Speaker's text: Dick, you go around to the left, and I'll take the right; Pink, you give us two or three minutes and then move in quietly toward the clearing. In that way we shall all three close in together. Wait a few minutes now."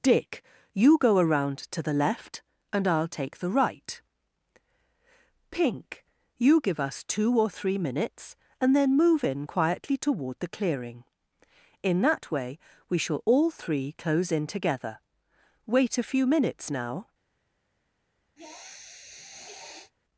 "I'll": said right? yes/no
yes